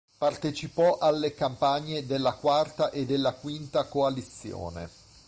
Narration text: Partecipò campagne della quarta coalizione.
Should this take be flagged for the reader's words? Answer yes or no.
yes